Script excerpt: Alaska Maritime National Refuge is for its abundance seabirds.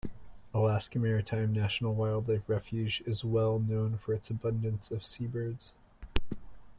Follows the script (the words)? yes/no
no